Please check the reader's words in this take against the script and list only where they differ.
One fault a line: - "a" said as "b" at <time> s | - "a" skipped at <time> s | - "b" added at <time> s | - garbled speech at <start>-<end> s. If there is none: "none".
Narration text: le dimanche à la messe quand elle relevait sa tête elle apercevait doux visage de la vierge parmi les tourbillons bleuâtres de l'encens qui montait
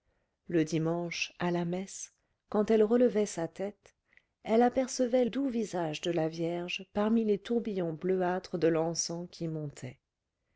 none